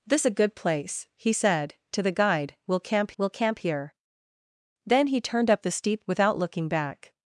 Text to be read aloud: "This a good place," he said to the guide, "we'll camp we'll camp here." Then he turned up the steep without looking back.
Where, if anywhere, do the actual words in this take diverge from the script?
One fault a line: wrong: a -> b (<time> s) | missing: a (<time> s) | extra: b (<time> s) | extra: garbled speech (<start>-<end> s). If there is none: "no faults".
no faults